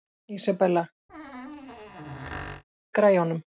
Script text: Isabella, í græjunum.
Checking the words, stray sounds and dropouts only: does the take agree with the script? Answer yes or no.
no